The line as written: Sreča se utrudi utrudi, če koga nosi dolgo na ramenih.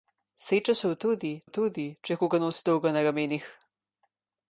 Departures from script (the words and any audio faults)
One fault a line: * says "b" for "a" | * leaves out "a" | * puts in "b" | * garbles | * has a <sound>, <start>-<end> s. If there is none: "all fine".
all fine